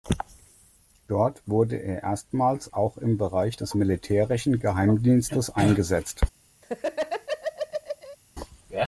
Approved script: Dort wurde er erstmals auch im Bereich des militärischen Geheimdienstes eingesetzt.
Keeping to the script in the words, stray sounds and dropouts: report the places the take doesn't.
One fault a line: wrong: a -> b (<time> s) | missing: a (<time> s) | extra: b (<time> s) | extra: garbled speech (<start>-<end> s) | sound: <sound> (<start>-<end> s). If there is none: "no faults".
sound: laugh (6.6-8.2 s)